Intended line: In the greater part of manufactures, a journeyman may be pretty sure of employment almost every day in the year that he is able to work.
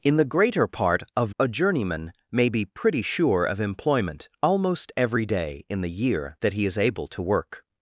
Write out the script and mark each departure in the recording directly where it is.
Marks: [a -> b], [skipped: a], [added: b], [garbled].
In the greater part of [skipped: manufactures,] a journeyman may be pretty sure of employment almost every day in the year that he is able to work.